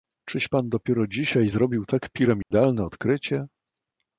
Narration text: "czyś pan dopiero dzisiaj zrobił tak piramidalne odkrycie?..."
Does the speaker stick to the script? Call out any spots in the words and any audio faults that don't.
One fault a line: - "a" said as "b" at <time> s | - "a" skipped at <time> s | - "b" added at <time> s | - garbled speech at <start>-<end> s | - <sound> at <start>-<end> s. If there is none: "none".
- dropout at 2.4-2.5 s